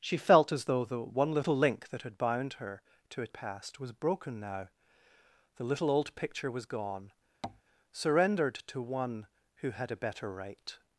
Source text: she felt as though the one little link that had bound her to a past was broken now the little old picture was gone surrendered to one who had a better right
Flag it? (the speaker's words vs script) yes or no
no